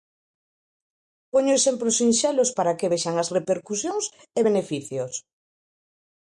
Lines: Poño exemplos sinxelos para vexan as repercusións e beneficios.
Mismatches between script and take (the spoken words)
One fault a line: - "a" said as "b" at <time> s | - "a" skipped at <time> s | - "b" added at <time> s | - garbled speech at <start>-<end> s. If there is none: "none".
- "que" added at 2.8 s